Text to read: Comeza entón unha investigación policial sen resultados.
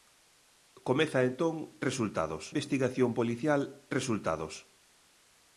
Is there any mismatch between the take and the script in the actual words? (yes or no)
yes